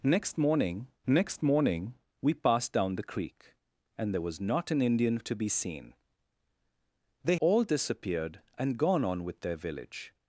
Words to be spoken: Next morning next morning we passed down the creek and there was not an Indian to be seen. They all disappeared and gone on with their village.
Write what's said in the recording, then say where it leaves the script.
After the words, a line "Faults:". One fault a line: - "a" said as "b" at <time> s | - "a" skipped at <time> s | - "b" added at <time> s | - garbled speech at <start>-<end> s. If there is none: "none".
Next morning next morning we passed down the creek and there was not an Indian to be seen. They all disappeared and gone on with their village.
Faults:
none